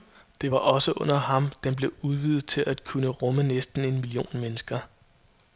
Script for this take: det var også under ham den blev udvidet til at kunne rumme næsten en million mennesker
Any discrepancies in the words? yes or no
no